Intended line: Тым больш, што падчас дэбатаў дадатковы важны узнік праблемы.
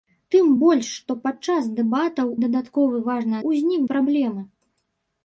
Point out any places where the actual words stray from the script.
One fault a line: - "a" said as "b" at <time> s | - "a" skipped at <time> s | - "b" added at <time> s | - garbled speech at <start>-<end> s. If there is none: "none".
none